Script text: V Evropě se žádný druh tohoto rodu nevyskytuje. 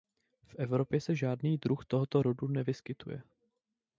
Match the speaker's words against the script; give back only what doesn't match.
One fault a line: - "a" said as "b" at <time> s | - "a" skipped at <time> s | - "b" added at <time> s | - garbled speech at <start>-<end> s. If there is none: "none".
none